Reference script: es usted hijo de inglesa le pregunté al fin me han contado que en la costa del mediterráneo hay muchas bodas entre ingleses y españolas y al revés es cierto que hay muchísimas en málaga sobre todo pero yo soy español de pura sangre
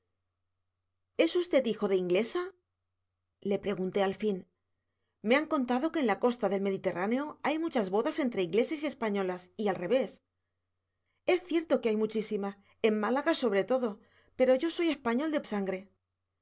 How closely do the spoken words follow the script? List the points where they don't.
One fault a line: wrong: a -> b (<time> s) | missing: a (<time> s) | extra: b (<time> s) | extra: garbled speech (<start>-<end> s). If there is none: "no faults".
missing: pura (15.4 s)